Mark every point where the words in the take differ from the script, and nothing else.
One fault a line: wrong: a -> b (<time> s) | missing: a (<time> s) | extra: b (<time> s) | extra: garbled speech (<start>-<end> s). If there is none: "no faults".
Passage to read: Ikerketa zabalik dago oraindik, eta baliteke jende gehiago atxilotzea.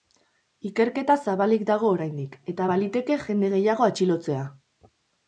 no faults